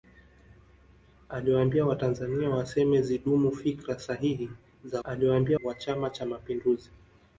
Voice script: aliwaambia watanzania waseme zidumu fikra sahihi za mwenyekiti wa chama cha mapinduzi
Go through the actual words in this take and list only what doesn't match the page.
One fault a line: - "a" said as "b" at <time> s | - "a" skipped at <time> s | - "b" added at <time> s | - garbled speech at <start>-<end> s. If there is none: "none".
- "mwenyekiti" said as "aliwaambia" at 5.0 s